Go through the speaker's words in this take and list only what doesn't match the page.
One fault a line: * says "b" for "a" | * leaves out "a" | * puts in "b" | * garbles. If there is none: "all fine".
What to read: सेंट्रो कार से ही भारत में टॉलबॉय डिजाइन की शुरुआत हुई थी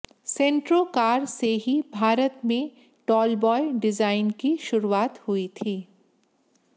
all fine